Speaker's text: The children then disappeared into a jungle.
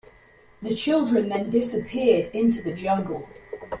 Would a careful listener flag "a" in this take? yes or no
yes